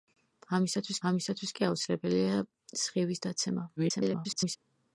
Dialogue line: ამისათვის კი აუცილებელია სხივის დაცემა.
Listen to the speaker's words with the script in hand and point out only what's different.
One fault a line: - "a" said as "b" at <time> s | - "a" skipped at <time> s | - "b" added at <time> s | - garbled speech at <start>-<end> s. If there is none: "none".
- "ამისათვის" added at 1.1 s
- garbled speech at 3.8-4.6 s